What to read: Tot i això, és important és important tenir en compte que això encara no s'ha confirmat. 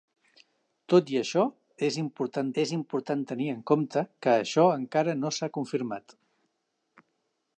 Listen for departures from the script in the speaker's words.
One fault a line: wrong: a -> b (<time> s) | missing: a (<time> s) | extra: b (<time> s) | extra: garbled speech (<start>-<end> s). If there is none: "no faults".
no faults